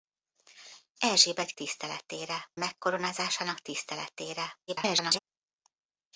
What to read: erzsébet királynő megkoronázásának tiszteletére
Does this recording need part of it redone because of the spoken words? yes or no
yes